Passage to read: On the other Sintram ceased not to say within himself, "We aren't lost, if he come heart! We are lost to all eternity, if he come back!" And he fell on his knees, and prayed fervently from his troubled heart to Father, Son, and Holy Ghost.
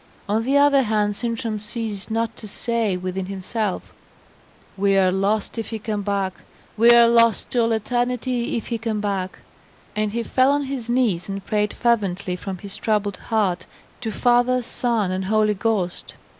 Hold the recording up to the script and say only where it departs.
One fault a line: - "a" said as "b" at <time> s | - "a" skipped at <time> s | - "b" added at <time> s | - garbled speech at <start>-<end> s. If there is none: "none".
- "hand" added at 0.8 s
- "aren't" said as "are" at 5.0 s
- "heart" said as "back" at 6.0 s